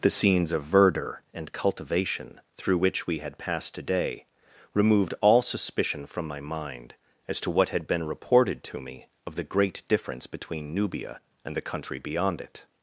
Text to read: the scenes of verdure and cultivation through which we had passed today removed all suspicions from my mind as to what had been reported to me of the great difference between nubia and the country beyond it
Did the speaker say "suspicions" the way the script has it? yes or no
no